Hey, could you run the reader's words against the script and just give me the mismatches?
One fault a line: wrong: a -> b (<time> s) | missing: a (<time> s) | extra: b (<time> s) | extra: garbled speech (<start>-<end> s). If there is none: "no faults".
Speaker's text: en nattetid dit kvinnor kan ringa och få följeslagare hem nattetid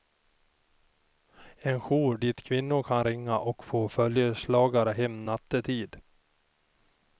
wrong: nattetid -> jour (1.8 s)